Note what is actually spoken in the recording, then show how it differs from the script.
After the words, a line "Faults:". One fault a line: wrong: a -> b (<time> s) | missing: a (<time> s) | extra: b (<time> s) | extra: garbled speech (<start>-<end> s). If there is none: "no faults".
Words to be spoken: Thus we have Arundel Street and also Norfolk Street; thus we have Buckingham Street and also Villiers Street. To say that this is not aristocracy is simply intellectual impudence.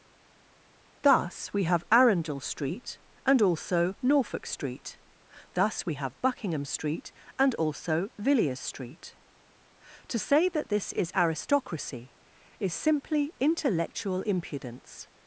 Thus we have Arundel Street and also Norfolk Street; thus we have Buckingham Street and also Villiers Street. To say that this is aristocracy is simply intellectual impudence.
Faults:
missing: not (11.1 s)